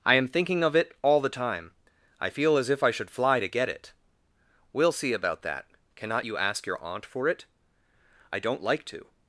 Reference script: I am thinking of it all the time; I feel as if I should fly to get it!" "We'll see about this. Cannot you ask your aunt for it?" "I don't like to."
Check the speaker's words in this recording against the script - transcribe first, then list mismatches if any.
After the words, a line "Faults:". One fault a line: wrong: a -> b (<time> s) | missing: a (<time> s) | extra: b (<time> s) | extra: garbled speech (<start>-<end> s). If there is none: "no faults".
I am thinking of it all the time; I feel as if I should fly to get it!" "We'll see about that. Cannot you ask your aunt for it?" "I don't like to."
Faults:
wrong: this -> that (5.4 s)